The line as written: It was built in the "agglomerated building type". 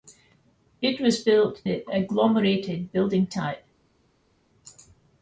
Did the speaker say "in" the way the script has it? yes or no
no